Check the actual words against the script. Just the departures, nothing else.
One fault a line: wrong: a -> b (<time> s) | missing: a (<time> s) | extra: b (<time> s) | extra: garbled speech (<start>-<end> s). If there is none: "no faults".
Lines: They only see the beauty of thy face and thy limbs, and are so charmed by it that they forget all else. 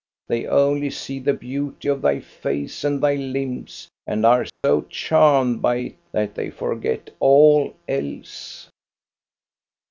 no faults